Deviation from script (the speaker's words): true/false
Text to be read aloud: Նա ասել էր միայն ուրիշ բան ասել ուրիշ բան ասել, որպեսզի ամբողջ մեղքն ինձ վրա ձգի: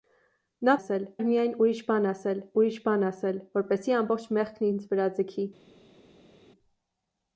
false